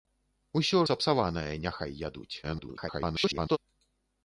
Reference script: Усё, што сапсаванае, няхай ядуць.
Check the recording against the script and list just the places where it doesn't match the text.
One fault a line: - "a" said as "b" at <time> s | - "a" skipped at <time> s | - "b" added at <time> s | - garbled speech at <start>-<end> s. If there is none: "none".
- "што" skipped at 0.8 s
- garbled speech at 2.4-3.6 s